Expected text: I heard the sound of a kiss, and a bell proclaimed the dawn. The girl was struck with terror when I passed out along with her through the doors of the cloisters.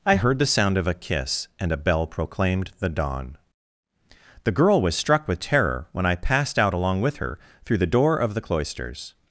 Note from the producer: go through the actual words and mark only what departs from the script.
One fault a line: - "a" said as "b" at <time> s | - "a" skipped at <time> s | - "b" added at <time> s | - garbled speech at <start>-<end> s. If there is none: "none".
- "doors" said as "door" at 7.8 s